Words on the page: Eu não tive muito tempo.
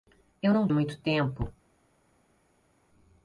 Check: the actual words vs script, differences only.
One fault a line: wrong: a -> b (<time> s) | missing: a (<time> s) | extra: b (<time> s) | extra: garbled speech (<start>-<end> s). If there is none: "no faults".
missing: tive (0.6 s)